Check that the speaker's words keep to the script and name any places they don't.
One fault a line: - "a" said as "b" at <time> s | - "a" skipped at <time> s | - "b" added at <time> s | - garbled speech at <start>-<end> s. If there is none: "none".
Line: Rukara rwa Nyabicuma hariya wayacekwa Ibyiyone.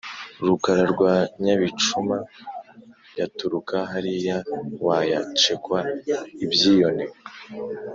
- "yaturuka" added at 3.2 s